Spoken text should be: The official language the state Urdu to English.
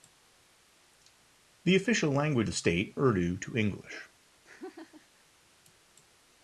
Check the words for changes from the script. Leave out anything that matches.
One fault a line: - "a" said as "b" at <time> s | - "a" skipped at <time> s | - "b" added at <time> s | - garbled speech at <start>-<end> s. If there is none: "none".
none